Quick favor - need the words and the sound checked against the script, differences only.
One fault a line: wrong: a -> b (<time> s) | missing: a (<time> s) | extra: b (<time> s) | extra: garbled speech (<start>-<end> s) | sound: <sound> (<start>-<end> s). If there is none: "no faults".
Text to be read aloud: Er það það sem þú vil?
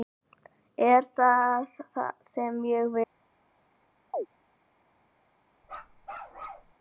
wrong: þú -> ég (2.7 s)
sound: chirp (4.1-4.3 s)
sound: bark (5.6-6.7 s)